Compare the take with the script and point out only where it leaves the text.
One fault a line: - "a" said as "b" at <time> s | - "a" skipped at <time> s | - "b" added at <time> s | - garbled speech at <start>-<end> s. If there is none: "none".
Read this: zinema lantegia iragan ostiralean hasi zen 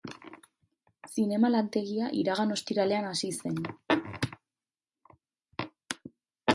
none